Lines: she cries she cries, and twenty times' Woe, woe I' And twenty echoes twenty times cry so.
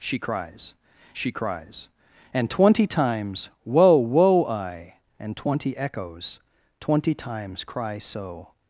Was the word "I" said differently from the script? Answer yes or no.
no